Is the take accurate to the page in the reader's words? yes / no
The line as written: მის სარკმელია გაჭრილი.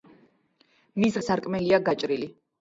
yes